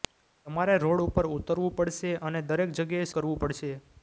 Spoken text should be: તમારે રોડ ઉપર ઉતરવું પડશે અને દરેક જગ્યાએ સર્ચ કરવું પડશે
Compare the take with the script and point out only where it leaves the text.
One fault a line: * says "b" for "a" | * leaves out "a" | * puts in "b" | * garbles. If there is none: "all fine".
* leaves out "સર્ચ"